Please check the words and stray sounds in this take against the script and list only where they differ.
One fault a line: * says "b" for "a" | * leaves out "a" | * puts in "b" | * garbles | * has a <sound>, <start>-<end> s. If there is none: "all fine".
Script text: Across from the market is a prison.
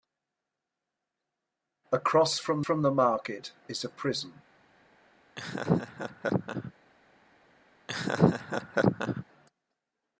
* puts in "from"
* has a laugh, 5.4-6.7 s
* has a laugh, 7.9-9.2 s